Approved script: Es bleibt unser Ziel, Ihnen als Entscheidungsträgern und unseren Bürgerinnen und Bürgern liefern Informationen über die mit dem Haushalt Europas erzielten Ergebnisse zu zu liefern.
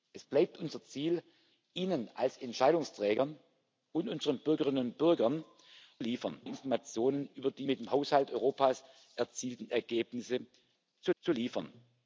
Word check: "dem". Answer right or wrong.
right